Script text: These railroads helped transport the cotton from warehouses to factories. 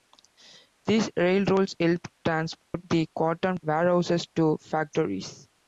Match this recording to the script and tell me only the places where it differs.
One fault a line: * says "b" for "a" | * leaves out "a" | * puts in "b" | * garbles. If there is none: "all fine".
* leaves out "from"